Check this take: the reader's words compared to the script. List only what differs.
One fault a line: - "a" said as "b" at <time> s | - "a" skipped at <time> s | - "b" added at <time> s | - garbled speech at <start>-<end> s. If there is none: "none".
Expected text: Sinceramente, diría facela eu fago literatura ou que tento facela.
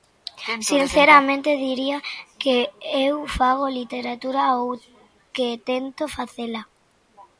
- "facela" said as "que" at 2.4 s